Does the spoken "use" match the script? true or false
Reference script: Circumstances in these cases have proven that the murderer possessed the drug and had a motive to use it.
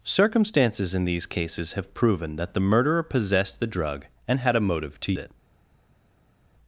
false